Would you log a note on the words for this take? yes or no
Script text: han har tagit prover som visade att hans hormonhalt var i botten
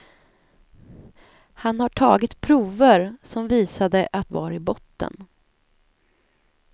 yes